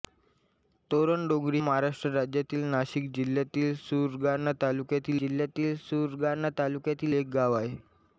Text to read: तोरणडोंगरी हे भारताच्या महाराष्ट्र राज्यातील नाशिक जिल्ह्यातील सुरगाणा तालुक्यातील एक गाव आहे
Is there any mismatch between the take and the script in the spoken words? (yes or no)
yes